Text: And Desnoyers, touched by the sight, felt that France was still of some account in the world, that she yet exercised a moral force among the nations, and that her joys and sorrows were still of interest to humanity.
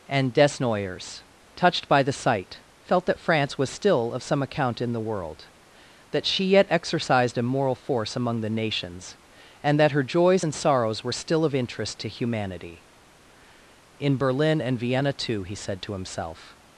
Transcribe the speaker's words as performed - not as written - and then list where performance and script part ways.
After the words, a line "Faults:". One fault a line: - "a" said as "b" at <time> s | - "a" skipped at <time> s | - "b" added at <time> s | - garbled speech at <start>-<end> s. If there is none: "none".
And Desnoyers, touched by the sight, felt that France was still of some account in the world, that she yet exercised a moral force among the nations, and that her joys and sorrows were still of interest to humanity. "In Berlin and Vienna, too," he said to himself
Faults:
- "In Berlin and Vienna too he said to himself" added at 14.0 s